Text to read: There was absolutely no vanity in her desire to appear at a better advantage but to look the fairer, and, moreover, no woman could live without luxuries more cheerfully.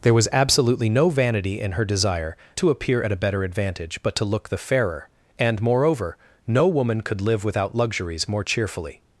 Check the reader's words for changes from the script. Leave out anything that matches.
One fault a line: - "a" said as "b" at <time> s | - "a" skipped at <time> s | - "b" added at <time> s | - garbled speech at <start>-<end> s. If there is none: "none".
none